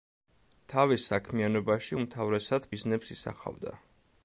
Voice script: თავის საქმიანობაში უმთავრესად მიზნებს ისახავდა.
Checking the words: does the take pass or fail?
pass